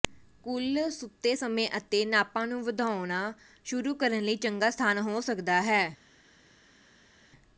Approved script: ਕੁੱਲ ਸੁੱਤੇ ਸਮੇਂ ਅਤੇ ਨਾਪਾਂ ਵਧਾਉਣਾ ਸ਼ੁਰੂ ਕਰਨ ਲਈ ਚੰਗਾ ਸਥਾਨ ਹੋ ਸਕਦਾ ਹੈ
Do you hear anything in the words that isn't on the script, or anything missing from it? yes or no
yes